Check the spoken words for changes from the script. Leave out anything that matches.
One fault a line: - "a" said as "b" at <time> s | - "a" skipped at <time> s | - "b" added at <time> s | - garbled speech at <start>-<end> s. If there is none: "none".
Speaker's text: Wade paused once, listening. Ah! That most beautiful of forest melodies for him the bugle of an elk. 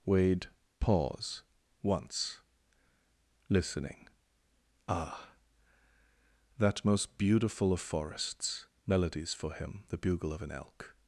- "paused" said as "pause" at 0.8 s
- "forest" said as "forests" at 7.8 s